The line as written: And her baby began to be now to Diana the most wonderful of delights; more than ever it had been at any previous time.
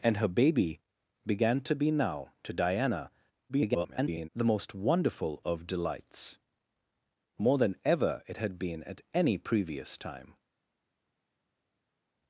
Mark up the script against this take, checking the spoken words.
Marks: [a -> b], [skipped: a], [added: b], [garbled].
And her baby began to be now to Diana [garbled] the most wonderful of delights; more than ever it had been at any previous time.